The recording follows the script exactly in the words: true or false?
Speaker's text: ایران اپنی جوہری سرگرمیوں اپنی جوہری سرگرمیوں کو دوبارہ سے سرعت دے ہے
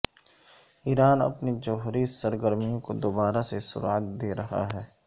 false